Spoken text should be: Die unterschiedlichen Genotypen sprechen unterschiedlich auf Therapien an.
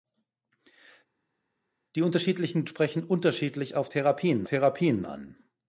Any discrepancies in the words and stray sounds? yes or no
yes